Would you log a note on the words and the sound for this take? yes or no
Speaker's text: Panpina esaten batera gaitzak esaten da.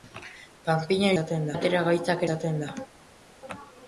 no